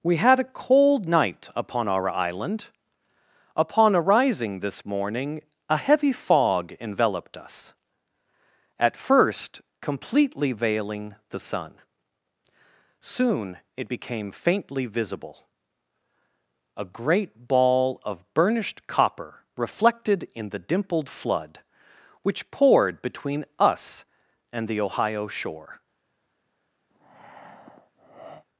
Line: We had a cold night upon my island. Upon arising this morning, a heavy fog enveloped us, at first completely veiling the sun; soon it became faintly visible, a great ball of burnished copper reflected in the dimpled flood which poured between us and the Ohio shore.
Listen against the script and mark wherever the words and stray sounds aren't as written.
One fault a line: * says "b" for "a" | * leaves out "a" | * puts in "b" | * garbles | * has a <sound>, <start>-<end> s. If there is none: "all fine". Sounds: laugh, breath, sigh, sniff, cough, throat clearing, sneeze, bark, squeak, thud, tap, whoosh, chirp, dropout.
* says "our" for "my"
* has a breath, 26.9-28.5 s